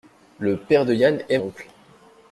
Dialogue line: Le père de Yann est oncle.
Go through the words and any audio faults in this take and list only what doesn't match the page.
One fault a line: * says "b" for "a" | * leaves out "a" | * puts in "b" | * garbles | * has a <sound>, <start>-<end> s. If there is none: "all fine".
all fine